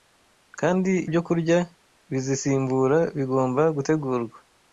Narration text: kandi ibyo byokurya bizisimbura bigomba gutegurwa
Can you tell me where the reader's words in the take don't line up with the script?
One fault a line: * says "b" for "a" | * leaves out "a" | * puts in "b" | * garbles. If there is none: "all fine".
* leaves out "ibyo"